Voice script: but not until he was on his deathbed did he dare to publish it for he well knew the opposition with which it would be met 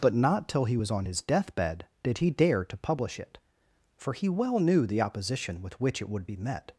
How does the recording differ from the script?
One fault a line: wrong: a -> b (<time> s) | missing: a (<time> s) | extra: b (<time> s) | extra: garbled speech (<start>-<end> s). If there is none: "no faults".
wrong: until -> till (0.5 s)